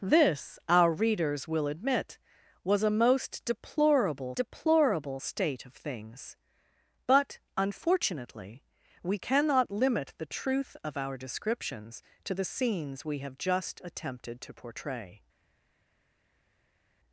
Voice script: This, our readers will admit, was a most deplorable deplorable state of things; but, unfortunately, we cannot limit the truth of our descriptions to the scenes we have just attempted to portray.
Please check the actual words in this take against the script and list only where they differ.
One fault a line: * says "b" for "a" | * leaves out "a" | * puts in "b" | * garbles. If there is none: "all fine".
all fine